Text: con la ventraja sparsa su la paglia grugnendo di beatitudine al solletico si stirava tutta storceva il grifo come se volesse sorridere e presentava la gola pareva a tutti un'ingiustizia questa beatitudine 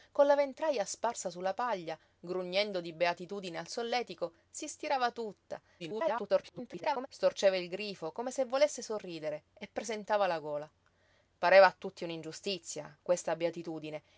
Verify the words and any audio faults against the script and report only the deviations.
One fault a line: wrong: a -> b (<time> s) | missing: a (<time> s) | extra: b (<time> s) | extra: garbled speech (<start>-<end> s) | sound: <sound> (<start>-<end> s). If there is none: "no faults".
extra: garbled speech (5.8-7.1 s)